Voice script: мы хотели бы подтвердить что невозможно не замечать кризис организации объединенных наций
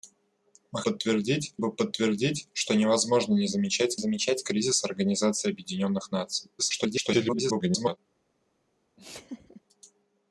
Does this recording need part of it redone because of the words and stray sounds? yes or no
yes